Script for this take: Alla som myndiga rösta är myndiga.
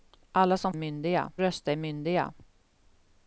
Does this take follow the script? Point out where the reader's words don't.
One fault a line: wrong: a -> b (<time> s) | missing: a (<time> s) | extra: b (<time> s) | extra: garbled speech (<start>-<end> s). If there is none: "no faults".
no faults